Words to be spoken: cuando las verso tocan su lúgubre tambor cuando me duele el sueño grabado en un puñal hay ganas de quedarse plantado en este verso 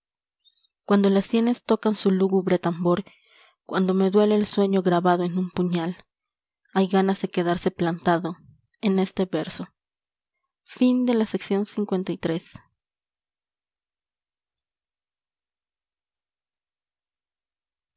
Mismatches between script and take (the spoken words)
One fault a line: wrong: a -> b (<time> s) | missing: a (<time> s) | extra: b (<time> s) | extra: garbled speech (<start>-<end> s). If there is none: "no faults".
wrong: verso -> sienes (1.3 s)